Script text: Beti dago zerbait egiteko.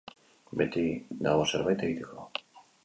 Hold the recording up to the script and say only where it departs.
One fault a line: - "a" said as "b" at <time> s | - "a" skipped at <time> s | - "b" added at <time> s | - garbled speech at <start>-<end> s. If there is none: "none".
none